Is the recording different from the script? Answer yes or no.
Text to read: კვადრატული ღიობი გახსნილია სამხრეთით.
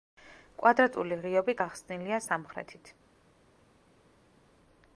no